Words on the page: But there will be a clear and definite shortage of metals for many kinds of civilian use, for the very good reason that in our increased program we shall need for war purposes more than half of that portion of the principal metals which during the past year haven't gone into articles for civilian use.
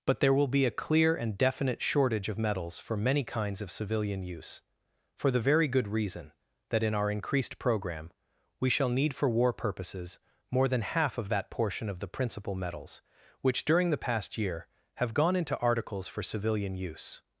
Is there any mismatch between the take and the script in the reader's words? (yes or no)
yes